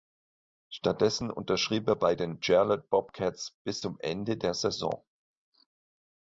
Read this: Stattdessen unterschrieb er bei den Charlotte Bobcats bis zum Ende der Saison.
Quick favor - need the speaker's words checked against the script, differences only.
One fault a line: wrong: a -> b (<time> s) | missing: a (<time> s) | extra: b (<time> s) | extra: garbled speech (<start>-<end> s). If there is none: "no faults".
no faults